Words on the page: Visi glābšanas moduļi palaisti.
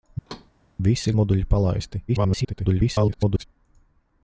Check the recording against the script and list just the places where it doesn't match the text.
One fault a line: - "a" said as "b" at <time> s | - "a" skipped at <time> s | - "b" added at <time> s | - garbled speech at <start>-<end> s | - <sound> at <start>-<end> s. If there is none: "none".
- thud at 0.3-0.5 s
- "glābšanas" skipped at 1.1 s
- garbled speech at 2.1-3.4 s